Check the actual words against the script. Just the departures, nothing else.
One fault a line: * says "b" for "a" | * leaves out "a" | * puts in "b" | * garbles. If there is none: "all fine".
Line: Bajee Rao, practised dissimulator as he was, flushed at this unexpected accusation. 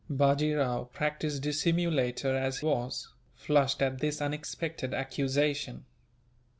* leaves out "he"